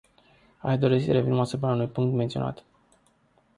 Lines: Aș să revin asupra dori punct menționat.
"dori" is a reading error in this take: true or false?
true